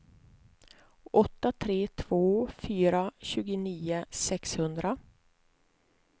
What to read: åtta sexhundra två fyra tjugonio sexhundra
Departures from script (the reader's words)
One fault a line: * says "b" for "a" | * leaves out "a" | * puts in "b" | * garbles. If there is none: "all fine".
* says "tre" for "sexhundra"